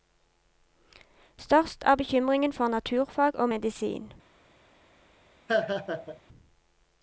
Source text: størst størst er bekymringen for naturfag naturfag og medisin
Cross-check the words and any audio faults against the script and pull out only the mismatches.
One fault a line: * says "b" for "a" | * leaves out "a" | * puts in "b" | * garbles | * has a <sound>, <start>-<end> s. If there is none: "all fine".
* leaves out "størst"
* leaves out "naturfag"
* has a laugh, 5.5-6.2 s